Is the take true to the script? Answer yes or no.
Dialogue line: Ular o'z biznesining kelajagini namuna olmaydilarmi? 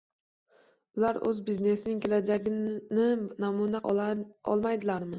yes